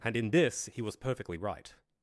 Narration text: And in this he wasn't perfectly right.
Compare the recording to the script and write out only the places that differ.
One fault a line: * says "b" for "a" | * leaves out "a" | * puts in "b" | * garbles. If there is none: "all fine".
* says "was" for "wasn't"